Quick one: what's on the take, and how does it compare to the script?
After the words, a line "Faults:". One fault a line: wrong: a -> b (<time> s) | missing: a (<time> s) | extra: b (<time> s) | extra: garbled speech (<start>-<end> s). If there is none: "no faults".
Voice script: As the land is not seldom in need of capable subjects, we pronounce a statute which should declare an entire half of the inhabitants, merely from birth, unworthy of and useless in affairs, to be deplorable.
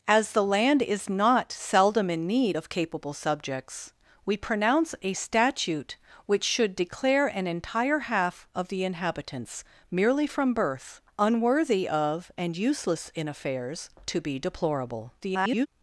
As the land is not seldom in need of capable subjects, we pronounce a statute which should declare an entire half of the inhabitants, merely from birth, unworthy of and useless in affairs, to be deplorable. [garbled]
Faults:
extra: garbled speech (15.2-15.7 s)